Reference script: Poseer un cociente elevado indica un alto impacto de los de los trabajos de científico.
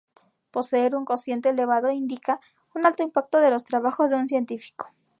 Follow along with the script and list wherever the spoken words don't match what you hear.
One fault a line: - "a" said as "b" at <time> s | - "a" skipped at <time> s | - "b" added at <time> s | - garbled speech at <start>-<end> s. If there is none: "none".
- "de los" skipped at 3.7 s
- "un" added at 4.2 s